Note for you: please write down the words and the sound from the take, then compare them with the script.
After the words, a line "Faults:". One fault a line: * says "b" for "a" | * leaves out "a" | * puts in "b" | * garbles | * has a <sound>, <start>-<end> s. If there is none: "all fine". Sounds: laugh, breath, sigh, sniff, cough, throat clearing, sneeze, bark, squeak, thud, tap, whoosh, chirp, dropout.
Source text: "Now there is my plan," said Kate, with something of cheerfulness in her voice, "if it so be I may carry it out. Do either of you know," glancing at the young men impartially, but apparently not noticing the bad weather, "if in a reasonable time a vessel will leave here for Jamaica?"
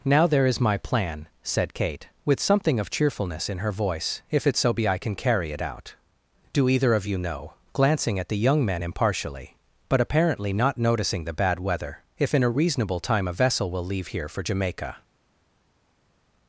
"Now there is my plan," said Kate, with something of cheerfulness in her voice, "if it so be I can carry it out. Do either of you know," glancing at the young men impartially, but apparently not noticing the bad weather, "if in a reasonable time a vessel will leave here for Jamaica?"
Faults:
* says "can" for "may"